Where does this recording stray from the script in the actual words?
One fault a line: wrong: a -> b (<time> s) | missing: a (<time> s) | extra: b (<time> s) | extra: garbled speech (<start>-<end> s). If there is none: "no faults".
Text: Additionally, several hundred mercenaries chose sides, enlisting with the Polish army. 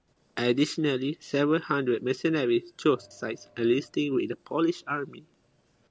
no faults